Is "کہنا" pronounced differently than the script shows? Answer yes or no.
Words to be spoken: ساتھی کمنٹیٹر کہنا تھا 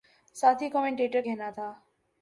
no